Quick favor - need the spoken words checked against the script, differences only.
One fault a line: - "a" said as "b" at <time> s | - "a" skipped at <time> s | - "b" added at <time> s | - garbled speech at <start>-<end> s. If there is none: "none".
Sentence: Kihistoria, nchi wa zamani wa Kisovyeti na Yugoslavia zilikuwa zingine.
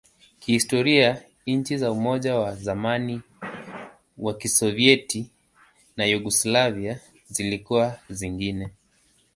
- "za Umoja" added at 1.8 s